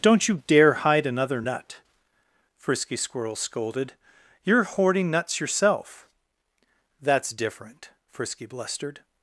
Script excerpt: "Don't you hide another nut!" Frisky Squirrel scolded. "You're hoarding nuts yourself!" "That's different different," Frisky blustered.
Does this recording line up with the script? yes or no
no